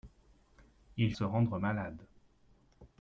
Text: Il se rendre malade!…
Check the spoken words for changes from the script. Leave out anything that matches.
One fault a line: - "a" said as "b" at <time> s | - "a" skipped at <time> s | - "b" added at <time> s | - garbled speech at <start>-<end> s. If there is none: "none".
none